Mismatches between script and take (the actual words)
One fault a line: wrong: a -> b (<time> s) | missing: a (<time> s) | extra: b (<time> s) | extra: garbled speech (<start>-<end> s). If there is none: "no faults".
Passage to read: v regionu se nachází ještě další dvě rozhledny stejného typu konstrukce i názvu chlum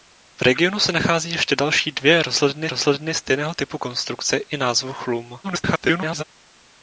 extra: rozhledny (2.7 s)
extra: garbled speech (5.4-6.2 s)